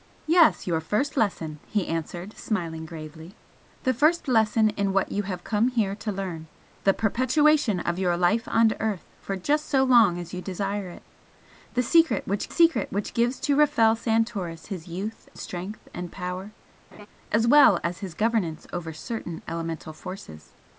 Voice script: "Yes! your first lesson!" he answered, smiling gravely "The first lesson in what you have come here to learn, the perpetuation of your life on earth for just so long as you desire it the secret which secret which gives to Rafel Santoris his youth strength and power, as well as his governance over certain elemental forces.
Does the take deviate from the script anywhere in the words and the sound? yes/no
yes